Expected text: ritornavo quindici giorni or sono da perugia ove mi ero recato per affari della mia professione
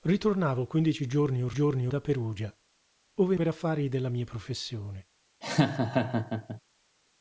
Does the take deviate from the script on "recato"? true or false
true